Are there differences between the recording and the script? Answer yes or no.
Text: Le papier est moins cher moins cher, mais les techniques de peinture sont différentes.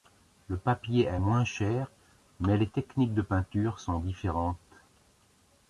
yes